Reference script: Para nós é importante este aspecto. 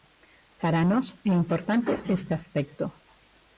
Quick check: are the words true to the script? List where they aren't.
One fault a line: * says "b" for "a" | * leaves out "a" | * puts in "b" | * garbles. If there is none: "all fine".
all fine